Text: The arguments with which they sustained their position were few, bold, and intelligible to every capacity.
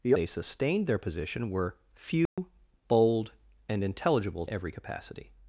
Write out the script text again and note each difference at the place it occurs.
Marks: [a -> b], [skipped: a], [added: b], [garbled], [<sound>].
The [skipped: arguments with which] they sustained their position were few, [dropout] bold, and intelligible [skipped: to] every capacity.